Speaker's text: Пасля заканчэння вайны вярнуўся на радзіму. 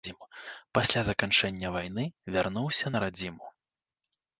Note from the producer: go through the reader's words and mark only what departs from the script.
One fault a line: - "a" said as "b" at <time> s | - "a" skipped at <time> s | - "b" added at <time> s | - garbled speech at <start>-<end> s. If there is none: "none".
none